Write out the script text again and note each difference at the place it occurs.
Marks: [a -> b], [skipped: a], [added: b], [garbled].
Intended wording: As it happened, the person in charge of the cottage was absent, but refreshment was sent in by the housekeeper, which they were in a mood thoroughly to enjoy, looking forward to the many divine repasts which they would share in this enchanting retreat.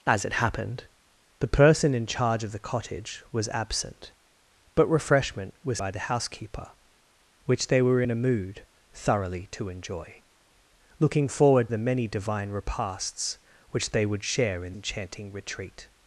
As it happened, the person in charge of the cottage was absent, but refreshment was [skipped: sent in] by the housekeeper, which they were in a mood thoroughly to enjoy, looking forward [skipped: to] the many divine repasts which they would share in [skipped: this] enchanting retreat.